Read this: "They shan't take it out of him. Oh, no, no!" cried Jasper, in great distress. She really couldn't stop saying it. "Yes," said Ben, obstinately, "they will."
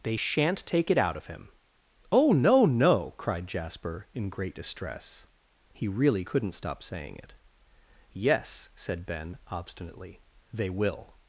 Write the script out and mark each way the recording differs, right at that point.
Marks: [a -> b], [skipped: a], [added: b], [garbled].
"They shan't take it out of him. Oh, no, no!" cried Jasper, in great distress. [She -> He] really couldn't stop saying it. "Yes," said Ben, obstinately, "they will."